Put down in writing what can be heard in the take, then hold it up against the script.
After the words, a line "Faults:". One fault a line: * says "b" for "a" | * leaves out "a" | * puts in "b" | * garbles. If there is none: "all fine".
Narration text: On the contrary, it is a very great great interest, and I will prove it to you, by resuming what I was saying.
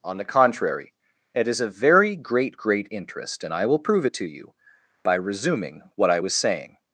On the contrary, it is a very great great interest, and I will prove it to you, by resuming what I was saying.
Faults:
all fine